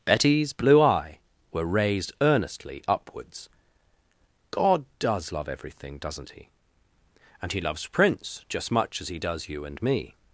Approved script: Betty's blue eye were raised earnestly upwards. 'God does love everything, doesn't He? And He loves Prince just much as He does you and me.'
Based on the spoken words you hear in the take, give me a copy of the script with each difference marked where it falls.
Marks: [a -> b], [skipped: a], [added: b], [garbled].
Betty's blue eye were raised earnestly upwards. 'God does love everything, doesn't He? And He loves Prince just much as He does you and me.'